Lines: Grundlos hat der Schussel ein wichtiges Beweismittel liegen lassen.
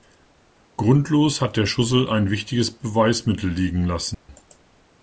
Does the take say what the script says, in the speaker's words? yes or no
yes